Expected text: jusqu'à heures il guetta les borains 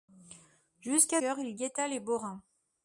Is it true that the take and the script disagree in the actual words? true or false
false